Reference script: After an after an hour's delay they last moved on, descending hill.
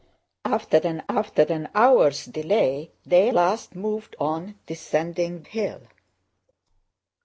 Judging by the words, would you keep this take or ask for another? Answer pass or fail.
pass